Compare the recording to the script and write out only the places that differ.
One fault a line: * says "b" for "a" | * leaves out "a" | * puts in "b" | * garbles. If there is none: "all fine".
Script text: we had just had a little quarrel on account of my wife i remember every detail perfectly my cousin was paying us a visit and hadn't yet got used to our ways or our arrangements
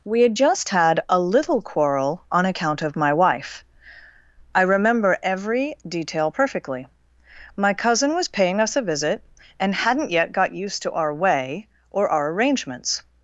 * says "way" for "ways"